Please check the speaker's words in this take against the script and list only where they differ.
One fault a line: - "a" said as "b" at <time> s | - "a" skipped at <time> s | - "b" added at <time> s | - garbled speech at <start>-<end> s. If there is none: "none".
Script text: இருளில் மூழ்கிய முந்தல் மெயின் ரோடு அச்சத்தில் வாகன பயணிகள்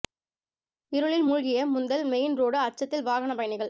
none